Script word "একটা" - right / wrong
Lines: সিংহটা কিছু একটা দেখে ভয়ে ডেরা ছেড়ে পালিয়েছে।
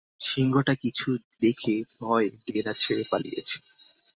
wrong